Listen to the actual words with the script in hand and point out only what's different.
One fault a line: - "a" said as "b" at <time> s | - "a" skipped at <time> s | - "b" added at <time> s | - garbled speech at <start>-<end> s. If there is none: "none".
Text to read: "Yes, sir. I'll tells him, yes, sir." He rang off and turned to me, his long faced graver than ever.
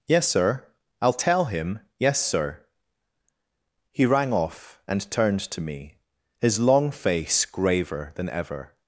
- "tells" said as "tell" at 1.1 s
- "faced" said as "face" at 6.9 s